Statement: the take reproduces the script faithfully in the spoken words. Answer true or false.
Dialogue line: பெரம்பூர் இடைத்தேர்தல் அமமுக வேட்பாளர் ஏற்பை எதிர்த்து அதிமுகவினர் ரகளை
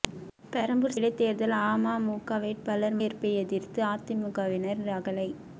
true